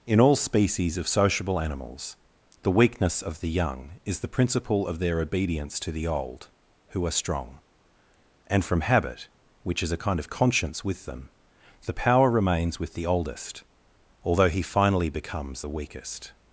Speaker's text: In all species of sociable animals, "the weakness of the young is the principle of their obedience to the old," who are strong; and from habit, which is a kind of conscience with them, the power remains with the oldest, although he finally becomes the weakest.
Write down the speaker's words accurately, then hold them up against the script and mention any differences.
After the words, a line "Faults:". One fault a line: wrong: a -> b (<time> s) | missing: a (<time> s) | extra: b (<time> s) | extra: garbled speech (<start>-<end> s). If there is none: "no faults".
In all species of sociable animals, "the weakness of the young is the principle of their obedience to the old," who are strong; and from habit, which is a kind of conscience with them, the power remains with the oldest, although he finally becomes the weakest.
Faults:
no faults